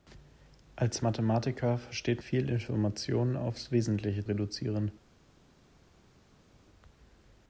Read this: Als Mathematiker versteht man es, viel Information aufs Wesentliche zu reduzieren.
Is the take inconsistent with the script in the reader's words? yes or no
yes